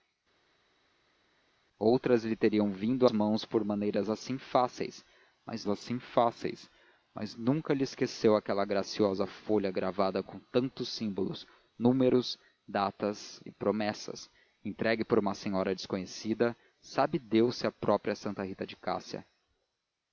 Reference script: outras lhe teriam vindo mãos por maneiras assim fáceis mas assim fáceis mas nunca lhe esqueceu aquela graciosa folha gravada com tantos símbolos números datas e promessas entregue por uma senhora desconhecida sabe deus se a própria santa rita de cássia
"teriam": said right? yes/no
yes